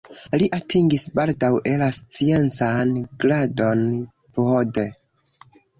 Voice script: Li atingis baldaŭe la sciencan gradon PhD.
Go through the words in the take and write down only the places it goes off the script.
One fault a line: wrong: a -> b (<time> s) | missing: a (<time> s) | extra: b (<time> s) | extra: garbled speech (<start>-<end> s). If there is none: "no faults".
no faults